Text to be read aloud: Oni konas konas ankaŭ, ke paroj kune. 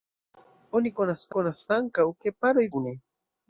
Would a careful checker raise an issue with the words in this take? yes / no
no